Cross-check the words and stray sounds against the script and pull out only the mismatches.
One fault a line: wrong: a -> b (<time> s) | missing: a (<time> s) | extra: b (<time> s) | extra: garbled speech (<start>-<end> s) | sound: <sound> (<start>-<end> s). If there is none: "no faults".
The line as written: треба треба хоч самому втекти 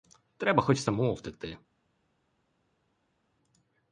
missing: треба (0.6 s)